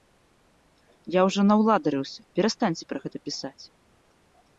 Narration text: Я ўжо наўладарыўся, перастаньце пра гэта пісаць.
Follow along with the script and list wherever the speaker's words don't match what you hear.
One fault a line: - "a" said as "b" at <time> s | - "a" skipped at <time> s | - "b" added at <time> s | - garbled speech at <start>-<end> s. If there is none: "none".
none